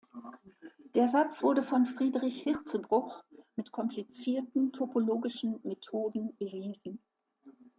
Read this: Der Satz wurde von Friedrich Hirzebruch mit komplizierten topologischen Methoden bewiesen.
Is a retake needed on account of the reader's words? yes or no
no